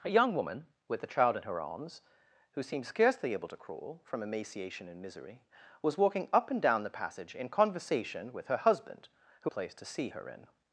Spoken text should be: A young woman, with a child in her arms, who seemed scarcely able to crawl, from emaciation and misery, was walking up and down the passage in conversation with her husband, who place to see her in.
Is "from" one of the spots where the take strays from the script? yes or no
no